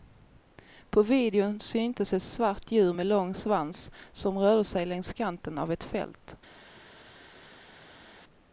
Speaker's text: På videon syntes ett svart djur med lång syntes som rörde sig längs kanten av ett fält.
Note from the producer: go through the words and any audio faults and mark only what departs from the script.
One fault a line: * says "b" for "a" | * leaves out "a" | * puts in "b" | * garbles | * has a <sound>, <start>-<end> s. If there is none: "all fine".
* says "svans" for "syntes"